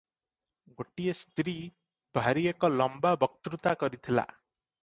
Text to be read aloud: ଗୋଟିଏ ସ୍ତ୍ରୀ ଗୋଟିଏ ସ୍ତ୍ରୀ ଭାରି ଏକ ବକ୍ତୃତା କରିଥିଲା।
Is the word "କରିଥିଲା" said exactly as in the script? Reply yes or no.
yes